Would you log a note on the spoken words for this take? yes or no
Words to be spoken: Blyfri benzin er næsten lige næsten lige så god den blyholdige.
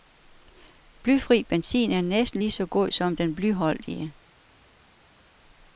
yes